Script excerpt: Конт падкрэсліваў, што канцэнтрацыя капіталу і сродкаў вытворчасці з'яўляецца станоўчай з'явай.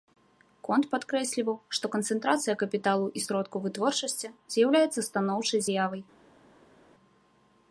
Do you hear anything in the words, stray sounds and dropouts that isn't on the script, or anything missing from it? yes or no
no